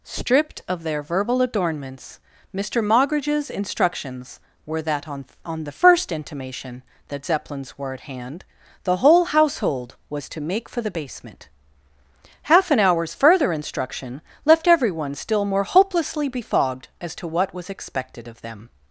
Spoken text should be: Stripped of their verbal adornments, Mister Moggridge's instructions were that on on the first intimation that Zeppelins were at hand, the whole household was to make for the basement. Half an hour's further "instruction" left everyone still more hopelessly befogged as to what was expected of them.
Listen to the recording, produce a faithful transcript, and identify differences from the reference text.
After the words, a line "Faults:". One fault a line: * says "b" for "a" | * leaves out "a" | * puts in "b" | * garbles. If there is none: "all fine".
Stripped of their verbal adornments, Mister Moggridge's instructions were that on on the first intimation that Zeppelins were at hand, the whole household was to make for the basement. Half an hour's further "instruction" left everyone still more hopelessly befogged as to what was expected of them.
Faults:
all fine